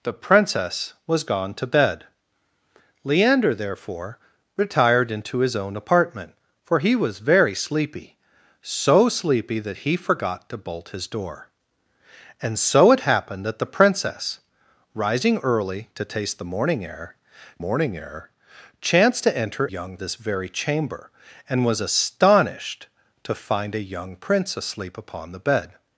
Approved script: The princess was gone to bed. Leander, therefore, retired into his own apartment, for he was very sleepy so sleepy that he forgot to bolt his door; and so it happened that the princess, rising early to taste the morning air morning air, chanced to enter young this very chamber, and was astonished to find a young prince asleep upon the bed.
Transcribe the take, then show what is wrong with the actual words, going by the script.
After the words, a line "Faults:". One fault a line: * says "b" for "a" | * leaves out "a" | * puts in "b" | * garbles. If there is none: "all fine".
The princess was gone to bed. Leander, therefore, retired into his own apartment, for he was very sleepy so sleepy that he forgot to bolt his door; and so it happened that the princess, rising early to taste the morning air morning air, chanced to enter young this very chamber, and was astonished to find a young prince asleep upon the bed.
Faults:
all fine